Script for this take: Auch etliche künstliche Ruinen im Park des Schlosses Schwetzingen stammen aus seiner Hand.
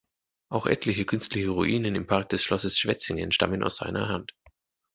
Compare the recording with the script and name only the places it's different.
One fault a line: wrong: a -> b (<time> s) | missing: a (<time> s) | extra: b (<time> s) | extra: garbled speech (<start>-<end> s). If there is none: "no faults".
no faults